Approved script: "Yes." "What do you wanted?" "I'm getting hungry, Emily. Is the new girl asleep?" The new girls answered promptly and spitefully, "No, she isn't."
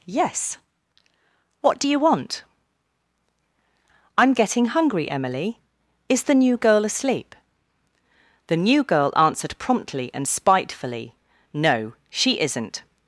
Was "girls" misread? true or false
true